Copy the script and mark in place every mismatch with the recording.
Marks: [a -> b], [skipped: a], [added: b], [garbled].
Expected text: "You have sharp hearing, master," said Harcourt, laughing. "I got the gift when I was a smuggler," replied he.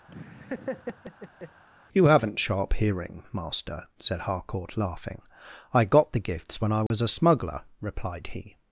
"You [have -> haven't] sharp hearing, master," said Harcourt, laughing. "I got the [gift -> gifts] when I was a smuggler," replied he.